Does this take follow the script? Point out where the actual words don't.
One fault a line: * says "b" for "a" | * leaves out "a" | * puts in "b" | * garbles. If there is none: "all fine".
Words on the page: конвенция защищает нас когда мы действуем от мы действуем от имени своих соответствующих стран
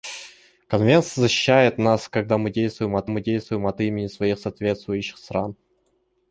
all fine